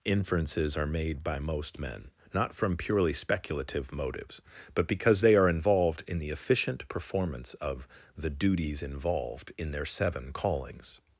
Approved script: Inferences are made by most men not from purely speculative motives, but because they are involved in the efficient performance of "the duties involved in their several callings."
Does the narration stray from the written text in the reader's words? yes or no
yes